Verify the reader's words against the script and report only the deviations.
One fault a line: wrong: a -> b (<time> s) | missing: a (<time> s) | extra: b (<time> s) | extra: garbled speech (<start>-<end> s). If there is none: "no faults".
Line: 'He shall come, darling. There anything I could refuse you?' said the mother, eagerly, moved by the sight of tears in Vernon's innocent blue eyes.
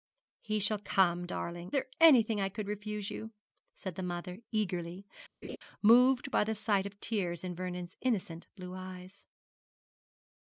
no faults